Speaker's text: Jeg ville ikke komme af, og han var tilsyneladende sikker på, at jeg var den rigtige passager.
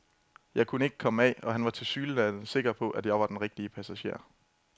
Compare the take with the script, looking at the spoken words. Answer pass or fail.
fail